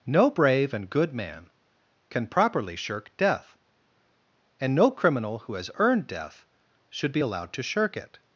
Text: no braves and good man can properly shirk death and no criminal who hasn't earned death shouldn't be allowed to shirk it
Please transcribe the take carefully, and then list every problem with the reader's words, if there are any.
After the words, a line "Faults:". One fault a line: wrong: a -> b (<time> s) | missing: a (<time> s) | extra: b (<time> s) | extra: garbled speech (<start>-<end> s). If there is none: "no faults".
no brave and good man can properly shirk death and no criminal who has earned death should be allowed to shirk it
Faults:
wrong: braves -> brave (0.3 s)
wrong: hasn't -> has (5.5 s)
wrong: shouldn't -> should (6.9 s)